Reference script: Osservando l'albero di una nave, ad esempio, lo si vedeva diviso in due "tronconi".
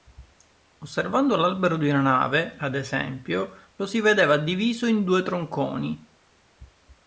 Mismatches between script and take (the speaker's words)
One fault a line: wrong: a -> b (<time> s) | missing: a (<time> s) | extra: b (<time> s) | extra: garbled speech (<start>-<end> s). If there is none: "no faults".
no faults